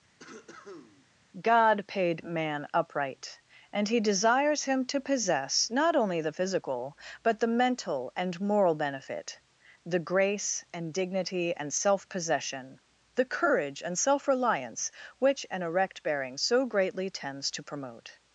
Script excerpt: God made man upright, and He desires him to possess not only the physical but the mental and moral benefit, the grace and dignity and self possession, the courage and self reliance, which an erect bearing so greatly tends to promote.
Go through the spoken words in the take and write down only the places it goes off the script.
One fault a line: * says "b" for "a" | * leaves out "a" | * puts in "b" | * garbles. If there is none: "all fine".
* says "paid" for "made"